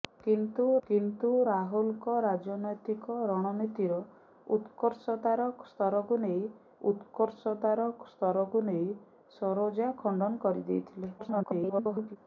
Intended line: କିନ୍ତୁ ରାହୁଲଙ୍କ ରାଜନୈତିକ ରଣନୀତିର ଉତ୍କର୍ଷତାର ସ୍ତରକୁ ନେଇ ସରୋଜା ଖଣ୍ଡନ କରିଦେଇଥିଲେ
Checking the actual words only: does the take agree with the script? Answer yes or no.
no